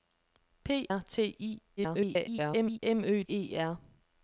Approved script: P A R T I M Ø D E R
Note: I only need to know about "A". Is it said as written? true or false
false